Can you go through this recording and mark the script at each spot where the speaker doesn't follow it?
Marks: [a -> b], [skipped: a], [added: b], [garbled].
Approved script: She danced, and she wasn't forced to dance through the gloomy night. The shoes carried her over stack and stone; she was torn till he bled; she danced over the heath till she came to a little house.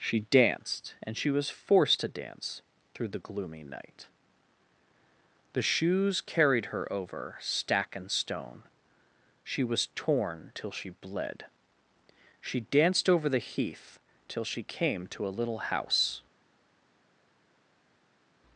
She danced, and she [wasn't -> was] forced to dance through the gloomy night. The shoes carried her over stack and stone; she was torn till [he -> she] bled; she danced over the heath till she came to a little house.